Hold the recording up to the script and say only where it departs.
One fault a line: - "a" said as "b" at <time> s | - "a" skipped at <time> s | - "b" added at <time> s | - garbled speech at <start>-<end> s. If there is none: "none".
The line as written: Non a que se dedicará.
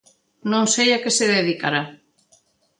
- "sei" added at 0.7 s